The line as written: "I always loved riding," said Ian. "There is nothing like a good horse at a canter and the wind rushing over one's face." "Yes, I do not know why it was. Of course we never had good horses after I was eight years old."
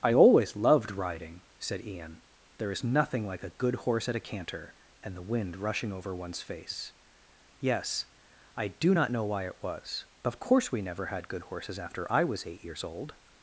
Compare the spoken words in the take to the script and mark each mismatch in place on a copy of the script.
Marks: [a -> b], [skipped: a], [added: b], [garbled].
"I always loved riding," said Ian. "There is nothing like a good horse at a canter and the wind rushing over one's face." "Yes, I do not know why it was. Of course we never had good horses after I was eight years old."